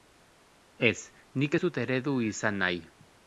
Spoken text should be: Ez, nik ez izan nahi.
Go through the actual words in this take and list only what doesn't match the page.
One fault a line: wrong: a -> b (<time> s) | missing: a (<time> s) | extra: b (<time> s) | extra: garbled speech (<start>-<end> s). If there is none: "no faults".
extra: dut eredu (1.6 s)